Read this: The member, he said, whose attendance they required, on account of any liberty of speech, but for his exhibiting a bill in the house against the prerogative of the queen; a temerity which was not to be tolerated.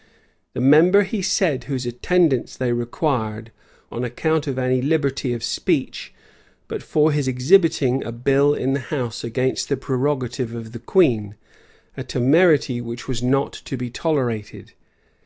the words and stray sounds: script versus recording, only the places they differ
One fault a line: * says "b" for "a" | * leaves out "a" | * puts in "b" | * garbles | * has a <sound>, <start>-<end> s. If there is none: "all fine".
all fine